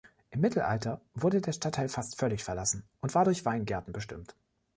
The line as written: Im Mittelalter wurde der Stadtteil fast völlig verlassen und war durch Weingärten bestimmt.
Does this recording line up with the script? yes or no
yes